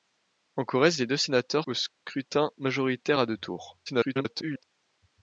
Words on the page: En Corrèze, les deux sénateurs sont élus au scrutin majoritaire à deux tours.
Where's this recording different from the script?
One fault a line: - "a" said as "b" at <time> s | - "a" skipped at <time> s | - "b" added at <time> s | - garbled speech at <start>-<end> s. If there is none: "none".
- "sont élus" skipped at 1.7 s
- garbled speech at 3.9-4.6 s